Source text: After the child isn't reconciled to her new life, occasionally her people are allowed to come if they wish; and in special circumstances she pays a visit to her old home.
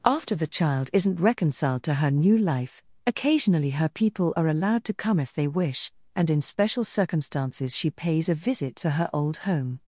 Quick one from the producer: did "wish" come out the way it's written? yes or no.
yes